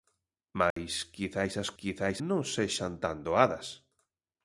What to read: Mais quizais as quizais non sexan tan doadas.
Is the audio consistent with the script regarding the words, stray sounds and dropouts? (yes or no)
no